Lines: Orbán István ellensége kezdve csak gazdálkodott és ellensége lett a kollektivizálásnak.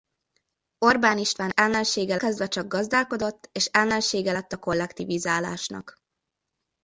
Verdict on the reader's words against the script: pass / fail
pass